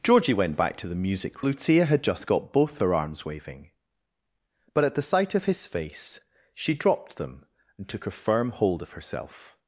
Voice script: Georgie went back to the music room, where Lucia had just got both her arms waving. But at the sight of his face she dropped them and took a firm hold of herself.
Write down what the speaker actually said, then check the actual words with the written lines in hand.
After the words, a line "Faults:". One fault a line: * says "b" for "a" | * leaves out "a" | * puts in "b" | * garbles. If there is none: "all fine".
Georgie went back to the music Lucia had just got both her arms waving. But at the sight of his face she dropped them and took a firm hold of herself.
Faults:
* leaves out "room where"